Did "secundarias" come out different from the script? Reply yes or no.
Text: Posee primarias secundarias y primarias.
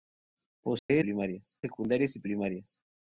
no